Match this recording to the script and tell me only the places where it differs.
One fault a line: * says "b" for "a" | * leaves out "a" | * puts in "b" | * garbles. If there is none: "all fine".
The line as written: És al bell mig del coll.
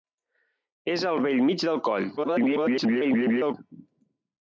* garbles